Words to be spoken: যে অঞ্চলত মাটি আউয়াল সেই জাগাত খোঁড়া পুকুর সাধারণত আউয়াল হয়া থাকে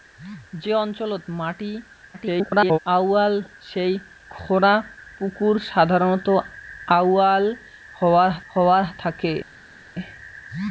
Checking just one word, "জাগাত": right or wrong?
wrong